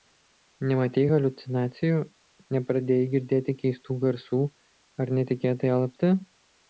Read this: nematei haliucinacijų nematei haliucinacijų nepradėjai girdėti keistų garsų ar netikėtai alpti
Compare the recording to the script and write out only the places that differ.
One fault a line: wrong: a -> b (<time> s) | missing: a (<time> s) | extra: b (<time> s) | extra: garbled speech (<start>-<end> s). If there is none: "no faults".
missing: nematei haliucinacijų (2.0 s)